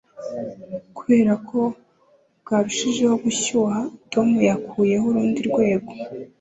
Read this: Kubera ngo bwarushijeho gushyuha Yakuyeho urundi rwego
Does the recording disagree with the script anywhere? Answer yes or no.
yes